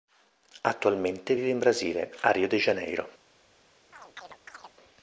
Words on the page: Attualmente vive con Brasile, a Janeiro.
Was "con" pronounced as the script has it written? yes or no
no